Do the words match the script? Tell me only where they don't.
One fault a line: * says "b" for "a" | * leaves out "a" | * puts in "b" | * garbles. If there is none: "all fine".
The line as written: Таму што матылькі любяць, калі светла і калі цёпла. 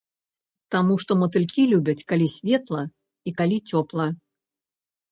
all fine